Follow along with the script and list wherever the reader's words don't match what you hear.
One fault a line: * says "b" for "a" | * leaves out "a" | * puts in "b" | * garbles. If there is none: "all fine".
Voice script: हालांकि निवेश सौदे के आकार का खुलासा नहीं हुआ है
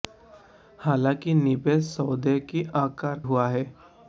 * leaves out "का खुलासा नहीं"